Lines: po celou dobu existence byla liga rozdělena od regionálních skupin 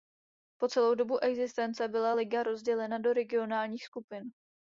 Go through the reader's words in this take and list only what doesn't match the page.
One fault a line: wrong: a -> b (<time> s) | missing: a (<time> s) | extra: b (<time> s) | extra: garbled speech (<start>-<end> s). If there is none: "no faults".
wrong: od -> do (3.0 s)